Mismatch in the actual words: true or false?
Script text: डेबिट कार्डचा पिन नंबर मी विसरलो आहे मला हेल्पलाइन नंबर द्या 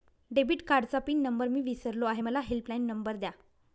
false